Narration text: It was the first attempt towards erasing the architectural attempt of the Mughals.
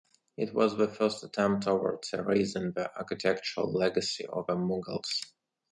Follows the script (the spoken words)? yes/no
no